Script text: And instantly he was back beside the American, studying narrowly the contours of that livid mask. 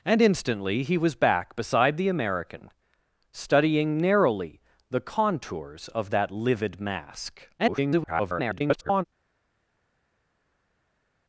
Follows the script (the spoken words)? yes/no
no